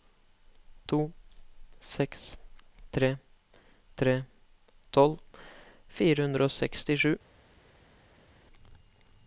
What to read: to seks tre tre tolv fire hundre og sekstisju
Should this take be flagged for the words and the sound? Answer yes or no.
no